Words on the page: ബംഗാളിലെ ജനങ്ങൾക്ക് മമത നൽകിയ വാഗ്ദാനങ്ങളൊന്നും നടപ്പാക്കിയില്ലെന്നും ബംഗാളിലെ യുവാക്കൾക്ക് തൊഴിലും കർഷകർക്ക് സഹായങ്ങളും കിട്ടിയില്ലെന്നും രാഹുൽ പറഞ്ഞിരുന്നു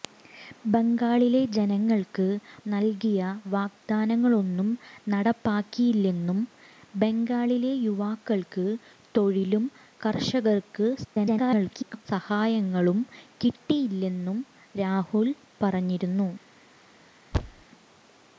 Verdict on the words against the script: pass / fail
fail